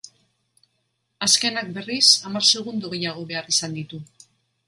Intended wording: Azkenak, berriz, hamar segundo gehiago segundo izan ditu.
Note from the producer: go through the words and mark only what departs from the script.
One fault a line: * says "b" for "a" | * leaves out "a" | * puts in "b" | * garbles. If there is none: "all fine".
* says "behar" for "segundo"